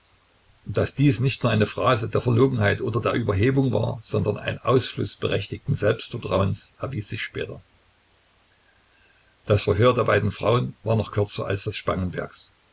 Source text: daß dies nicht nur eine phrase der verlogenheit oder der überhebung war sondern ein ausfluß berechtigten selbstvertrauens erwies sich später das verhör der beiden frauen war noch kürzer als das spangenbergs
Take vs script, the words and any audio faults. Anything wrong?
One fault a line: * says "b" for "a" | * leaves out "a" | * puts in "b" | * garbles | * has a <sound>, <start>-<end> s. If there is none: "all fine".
all fine